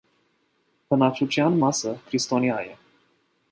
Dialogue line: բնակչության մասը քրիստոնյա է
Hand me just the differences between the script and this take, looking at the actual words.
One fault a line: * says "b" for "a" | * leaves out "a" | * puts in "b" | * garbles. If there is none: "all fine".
all fine